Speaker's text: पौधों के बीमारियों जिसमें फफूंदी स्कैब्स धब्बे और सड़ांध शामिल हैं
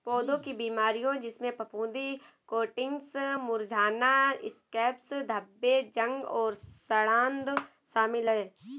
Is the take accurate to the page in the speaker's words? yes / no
no